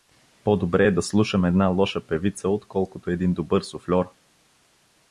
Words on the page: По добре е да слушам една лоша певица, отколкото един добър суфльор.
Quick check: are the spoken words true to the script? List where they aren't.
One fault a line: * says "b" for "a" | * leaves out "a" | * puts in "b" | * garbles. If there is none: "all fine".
all fine